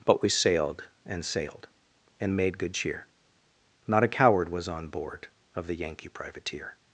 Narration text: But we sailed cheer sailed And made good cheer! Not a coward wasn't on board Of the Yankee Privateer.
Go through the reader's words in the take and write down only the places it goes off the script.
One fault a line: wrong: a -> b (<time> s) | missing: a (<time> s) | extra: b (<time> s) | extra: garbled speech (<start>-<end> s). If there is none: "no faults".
wrong: cheer -> and (1.1 s)
wrong: wasn't -> was (4.5 s)